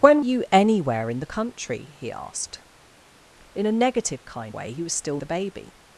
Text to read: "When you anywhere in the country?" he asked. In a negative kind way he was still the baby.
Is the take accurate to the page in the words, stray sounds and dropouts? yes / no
yes